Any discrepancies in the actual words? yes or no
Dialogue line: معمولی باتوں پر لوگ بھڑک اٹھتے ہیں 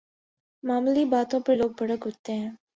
no